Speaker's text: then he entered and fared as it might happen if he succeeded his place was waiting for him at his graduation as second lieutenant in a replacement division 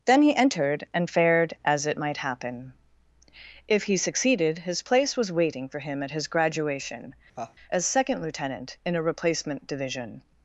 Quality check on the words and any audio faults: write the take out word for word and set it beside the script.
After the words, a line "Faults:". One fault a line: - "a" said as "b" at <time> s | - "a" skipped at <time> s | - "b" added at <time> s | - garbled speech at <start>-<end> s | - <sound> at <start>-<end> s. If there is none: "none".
then he entered and fared as it might happen if he succeeded his place was waiting for him at his graduation as second lieutenant in a replacement division
Faults:
- laugh at 7.4-7.6 s